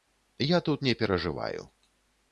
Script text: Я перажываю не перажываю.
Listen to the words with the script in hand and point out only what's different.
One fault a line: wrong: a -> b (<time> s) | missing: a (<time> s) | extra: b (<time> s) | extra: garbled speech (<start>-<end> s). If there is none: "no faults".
wrong: перажываю -> тут (0.6 s)